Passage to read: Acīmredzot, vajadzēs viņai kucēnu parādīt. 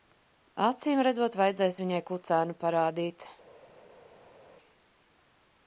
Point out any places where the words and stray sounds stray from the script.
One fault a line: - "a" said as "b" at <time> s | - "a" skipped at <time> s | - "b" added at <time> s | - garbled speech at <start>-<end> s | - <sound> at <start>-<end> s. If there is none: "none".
none